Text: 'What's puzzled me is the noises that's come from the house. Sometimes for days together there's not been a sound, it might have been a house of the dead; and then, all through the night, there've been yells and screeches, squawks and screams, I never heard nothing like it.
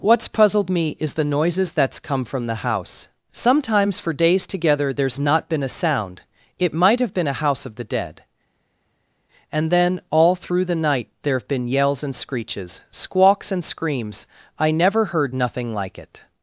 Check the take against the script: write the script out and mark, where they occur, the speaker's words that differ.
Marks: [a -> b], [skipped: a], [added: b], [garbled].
'What's puzzled me is the noises that's come from the house. Sometimes for days together there's not been a sound, it might have been a house of the dead; and then, all through the night, there've been yells and screeches, squawks and screams, I never heard nothing like it.